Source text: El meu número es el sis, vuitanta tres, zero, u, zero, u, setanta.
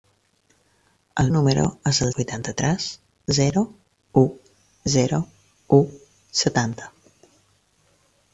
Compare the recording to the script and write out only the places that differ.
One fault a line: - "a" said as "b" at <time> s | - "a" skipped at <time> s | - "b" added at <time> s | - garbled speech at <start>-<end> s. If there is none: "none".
- "meu" skipped at 1.3 s
- "sis" skipped at 2.1 s